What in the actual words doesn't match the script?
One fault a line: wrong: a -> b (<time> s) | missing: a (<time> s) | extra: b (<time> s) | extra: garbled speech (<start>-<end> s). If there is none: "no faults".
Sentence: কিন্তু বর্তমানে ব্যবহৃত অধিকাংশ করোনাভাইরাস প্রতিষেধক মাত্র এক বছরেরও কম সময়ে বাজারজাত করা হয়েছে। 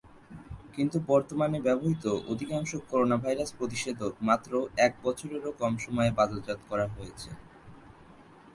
no faults